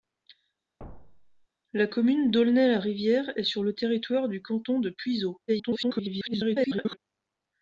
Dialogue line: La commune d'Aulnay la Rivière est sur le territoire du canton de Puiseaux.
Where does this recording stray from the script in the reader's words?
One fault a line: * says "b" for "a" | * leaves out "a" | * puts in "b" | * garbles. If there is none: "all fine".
* garbles